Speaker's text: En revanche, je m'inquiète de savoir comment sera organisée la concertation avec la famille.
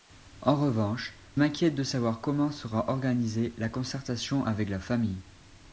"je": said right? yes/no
no